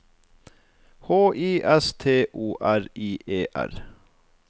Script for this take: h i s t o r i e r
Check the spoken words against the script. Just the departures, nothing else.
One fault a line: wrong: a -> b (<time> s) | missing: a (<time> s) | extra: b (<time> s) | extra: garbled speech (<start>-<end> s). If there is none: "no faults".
no faults